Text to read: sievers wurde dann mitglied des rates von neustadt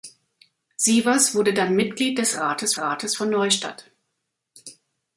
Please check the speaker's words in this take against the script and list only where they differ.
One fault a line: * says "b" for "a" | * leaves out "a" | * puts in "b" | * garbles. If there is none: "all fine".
* puts in "rates"